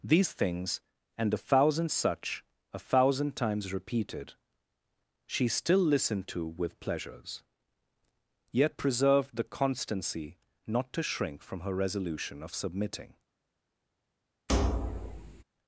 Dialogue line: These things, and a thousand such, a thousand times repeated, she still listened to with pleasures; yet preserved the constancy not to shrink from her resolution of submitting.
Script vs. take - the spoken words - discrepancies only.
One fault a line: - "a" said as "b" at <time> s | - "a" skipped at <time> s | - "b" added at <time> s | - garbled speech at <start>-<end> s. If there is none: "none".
none